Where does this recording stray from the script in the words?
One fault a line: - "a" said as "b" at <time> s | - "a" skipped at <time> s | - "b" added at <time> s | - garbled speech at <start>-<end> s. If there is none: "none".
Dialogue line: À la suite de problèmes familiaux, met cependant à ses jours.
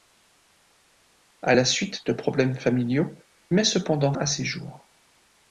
none